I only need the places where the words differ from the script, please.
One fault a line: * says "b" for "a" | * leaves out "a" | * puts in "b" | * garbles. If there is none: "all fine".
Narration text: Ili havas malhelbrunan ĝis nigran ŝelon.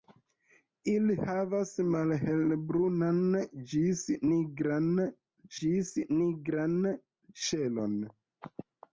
* puts in "ĝis nigran"